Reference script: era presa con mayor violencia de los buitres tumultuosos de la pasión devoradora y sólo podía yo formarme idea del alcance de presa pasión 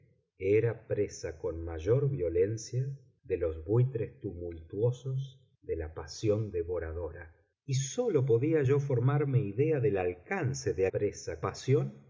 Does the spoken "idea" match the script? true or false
true